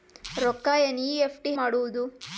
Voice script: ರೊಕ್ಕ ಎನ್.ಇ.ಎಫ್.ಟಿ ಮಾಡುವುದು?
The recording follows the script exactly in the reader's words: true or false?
true